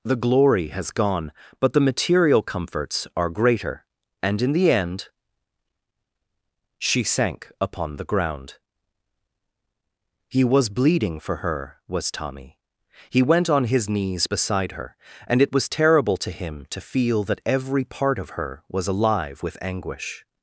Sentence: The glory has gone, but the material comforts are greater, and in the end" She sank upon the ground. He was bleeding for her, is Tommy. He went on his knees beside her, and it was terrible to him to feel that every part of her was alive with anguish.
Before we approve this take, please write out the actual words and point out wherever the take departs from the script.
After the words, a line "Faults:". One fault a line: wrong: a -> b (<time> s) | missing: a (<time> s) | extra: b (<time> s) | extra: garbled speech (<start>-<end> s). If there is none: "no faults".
The glory has gone, but the material comforts are greater, and in the end" She sank upon the ground. He was bleeding for her, was Tommy. He went on his knees beside her, and it was terrible to him to feel that every part of her was alive with anguish.
Faults:
wrong: is -> was (11.9 s)